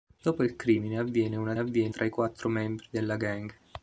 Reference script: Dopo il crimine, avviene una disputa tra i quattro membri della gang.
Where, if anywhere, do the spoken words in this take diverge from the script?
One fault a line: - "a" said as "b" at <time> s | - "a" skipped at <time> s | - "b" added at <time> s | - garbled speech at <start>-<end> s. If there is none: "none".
- "disputa" said as "avviene" at 1.6 s